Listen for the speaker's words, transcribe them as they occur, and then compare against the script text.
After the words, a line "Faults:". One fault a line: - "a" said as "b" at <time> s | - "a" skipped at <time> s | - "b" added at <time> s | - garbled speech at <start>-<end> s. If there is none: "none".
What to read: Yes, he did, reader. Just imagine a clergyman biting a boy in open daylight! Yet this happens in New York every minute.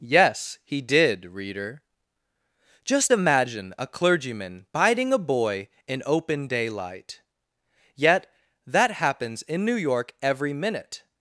Yes, he did, reader. Just imagine a clergyman biting a boy in open daylight! Yet that happens in New York every minute.
Faults:
- "this" said as "that" at 8.7 s